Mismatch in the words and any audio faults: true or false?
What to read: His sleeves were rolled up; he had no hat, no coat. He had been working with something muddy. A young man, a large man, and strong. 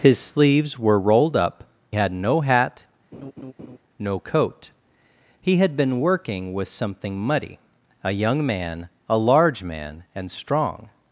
true